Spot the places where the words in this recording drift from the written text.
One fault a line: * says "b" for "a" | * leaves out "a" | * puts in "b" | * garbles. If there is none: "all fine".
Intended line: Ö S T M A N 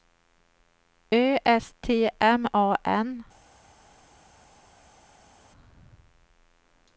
all fine